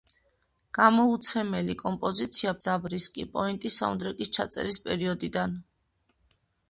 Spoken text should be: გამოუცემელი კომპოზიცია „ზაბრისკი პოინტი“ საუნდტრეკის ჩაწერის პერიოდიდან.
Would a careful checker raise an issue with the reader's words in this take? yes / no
no